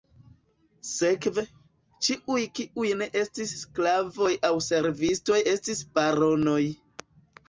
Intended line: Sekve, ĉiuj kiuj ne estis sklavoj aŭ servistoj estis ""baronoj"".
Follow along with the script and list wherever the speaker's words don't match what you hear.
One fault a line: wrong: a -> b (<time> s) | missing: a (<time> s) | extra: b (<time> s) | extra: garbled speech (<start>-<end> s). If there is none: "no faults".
no faults